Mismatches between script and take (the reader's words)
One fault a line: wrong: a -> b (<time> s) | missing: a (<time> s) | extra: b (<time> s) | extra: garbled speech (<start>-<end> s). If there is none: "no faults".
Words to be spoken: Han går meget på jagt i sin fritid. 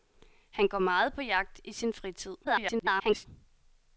extra: garbled speech (2.4-3.3 s)